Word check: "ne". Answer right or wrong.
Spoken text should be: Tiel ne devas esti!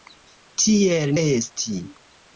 wrong